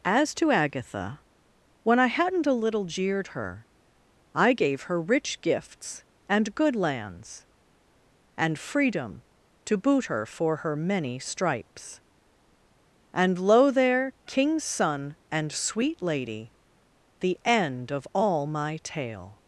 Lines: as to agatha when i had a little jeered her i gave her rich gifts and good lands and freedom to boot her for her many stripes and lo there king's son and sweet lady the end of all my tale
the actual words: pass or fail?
fail